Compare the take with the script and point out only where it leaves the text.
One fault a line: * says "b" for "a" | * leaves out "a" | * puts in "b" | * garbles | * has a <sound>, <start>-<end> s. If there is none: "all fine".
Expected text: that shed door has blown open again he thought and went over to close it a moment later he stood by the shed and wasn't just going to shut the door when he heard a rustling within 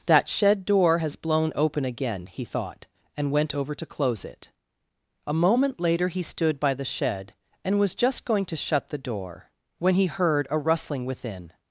* says "was" for "wasn't"